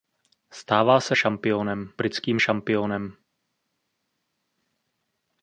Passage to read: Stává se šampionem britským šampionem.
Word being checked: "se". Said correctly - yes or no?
yes